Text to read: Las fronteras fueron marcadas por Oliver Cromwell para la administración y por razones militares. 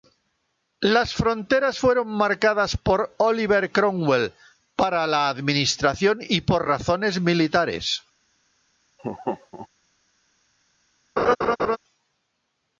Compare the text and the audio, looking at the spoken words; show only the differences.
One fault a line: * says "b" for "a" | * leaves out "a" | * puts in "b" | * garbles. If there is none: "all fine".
all fine